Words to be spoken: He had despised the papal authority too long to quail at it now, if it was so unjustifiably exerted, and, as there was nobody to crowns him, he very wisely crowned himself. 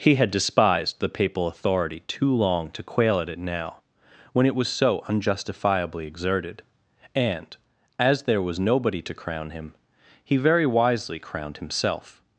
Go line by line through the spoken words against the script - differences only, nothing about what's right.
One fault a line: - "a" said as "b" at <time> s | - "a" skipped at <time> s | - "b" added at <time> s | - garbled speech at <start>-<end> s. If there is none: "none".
- "if" said as "when" at 4.3 s
- "crowns" said as "crown" at 9.1 s